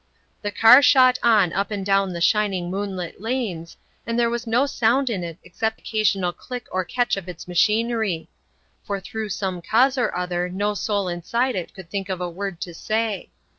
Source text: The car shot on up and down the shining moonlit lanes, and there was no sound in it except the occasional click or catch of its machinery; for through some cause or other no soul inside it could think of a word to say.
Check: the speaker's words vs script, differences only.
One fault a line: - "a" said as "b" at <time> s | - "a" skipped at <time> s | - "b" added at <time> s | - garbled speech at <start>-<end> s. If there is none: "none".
- "the" skipped at 5.8 s